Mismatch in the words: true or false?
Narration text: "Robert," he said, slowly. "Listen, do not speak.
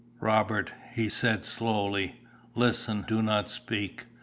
false